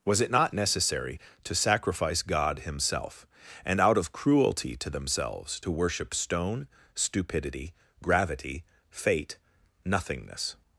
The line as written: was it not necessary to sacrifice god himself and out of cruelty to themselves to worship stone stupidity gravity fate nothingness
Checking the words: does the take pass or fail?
pass